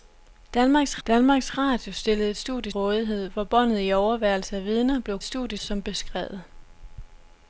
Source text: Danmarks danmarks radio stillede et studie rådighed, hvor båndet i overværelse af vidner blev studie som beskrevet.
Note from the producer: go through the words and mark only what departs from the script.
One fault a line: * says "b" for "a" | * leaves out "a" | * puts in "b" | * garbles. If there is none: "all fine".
all fine